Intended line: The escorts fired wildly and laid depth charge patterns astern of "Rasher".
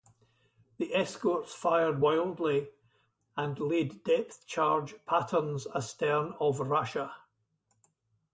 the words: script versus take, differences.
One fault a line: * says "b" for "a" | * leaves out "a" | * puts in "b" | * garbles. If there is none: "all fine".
all fine